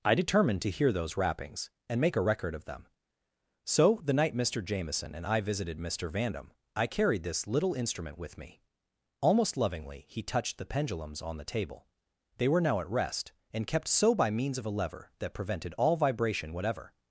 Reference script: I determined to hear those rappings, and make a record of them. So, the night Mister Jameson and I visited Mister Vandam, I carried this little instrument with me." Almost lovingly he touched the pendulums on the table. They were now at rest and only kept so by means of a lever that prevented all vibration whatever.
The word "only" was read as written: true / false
false